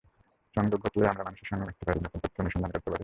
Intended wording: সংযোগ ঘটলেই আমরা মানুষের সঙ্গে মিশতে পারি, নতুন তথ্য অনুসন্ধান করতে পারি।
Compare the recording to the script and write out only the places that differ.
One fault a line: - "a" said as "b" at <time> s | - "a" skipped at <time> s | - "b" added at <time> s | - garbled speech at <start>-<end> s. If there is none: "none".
none